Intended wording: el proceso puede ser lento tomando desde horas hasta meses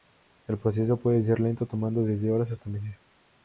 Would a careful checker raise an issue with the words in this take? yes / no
no